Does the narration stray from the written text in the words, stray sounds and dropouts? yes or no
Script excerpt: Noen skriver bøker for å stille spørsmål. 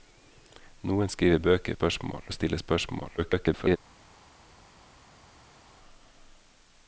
yes